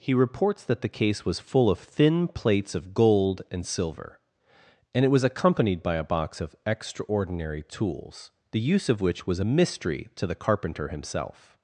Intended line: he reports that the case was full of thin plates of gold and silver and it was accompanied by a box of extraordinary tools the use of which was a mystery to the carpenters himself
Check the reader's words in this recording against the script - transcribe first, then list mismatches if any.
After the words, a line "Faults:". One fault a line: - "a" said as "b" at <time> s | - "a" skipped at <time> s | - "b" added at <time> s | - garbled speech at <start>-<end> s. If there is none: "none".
he reports that the case was full of thin plates of gold and silver and it was accompanied by a box of extraordinary tools the use of which was a mystery to the carpenter himself
Faults:
- "carpenters" said as "carpenter" at 10.4 s